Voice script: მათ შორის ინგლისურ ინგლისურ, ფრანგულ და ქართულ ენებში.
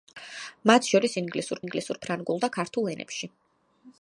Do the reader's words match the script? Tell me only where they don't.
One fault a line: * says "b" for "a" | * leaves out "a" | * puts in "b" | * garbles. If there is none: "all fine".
all fine